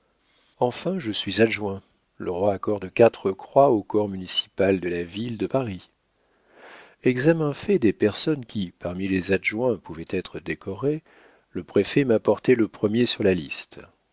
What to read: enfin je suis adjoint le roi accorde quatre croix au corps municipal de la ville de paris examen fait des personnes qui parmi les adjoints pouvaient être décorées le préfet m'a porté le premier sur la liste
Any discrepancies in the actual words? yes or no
no